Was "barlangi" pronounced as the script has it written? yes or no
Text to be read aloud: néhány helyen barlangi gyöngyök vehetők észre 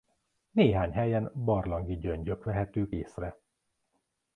yes